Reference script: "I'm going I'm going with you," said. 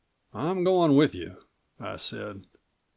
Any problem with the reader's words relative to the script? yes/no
yes